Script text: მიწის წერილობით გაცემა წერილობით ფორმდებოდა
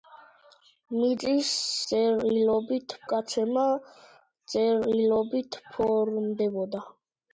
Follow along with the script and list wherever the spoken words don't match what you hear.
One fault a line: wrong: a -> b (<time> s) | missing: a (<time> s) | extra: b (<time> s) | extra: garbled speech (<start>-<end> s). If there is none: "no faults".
no faults